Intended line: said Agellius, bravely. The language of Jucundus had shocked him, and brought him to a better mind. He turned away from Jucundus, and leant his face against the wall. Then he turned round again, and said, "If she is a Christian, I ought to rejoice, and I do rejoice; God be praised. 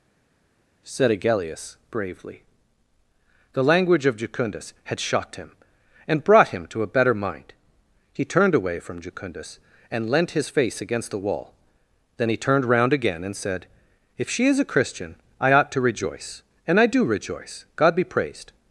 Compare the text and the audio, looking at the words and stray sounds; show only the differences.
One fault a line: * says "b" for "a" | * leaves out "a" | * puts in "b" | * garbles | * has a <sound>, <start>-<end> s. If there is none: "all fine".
all fine